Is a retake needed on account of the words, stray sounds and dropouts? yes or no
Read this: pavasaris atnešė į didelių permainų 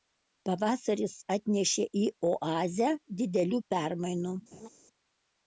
yes